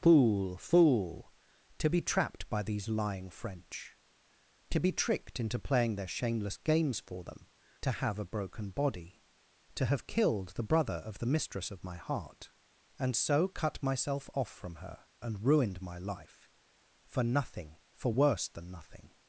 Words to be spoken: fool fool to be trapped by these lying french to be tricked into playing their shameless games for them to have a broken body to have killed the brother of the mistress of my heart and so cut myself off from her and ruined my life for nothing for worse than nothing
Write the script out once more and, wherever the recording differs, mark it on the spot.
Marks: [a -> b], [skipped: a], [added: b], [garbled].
fool fool to be trapped by these lying french to be tricked into playing their shameless games for them to have a broken body to have killed the brother of the mistress of my heart and so cut myself off from her and ruined my life for nothing for worse than nothing